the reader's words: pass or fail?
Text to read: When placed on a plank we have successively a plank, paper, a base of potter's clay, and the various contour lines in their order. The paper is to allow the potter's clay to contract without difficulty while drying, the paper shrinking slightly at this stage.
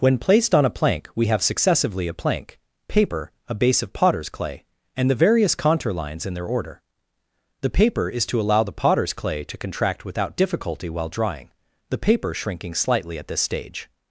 pass